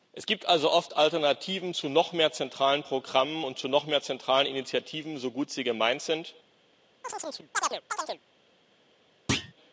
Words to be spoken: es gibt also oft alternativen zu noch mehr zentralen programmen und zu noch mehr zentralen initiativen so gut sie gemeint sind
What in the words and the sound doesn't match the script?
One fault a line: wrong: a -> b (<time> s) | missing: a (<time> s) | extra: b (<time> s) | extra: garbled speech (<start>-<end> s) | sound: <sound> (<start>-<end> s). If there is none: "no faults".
sound: chirp (7.0-8.2 s)
sound: thud (9.3-9.5 s)